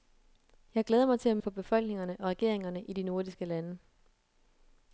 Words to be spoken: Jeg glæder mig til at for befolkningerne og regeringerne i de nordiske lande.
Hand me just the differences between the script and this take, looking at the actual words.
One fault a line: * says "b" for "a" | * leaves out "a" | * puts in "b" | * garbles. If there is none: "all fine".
all fine